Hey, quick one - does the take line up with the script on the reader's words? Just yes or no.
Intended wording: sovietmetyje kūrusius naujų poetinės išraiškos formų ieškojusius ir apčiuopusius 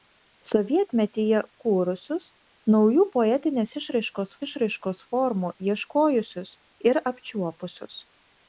no